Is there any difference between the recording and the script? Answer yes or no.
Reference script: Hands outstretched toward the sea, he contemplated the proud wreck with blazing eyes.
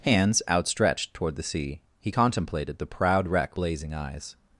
yes